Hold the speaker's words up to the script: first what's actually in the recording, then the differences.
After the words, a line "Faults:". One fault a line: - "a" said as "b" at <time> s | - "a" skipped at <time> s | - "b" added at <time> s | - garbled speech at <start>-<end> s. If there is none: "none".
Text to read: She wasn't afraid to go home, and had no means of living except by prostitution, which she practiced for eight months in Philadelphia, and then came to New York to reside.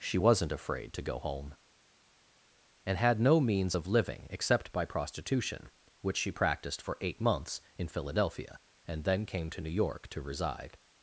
She wasn't afraid to go home, and had no means of living except by prostitution, which she practiced for eight months in Philadelphia, and then came to New York to reside.
Faults:
none